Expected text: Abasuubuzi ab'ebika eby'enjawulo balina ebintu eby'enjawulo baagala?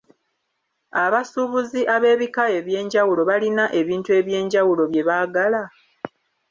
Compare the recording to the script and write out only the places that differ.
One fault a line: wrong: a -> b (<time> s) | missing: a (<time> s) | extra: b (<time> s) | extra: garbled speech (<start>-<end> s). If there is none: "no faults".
extra: bye (4.9 s)